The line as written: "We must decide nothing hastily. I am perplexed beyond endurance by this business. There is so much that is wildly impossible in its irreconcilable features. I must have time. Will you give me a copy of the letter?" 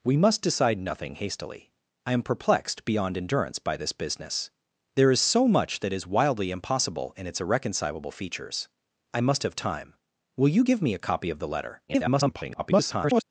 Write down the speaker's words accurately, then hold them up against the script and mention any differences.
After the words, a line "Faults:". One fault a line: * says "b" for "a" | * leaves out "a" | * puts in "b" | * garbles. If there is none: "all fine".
"We must decide nothing hastily. I am perplexed beyond endurance by this business. There is so much that is wildly impossible in its irreconcilable features. I must have time. Will you give me a copy of the letter?" [garbled]
Faults:
* garbles